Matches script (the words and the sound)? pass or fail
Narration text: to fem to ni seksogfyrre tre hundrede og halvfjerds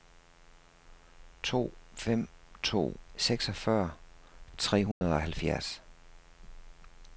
fail